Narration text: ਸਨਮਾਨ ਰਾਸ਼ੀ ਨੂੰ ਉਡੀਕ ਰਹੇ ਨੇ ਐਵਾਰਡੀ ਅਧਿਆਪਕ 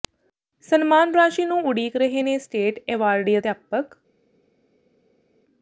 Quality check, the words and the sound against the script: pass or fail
fail